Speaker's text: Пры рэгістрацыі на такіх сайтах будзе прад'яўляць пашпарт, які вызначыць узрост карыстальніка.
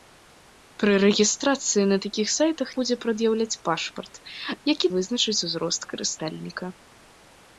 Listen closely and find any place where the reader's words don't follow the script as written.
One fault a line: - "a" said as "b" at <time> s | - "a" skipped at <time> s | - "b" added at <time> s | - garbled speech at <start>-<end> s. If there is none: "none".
none